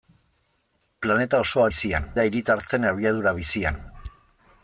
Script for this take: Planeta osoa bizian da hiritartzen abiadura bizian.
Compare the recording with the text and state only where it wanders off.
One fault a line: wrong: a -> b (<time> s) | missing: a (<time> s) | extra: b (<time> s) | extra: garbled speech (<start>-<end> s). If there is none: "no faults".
no faults